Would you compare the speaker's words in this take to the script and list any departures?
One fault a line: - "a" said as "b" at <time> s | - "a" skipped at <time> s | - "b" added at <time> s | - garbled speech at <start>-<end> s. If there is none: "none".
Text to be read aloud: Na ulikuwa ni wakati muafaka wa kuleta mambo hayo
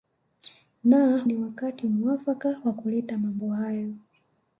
- "ulikuwa" skipped at 1.3 s